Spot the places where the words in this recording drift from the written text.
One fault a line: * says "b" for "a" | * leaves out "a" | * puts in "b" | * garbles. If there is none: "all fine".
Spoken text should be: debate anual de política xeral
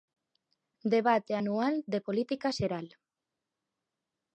all fine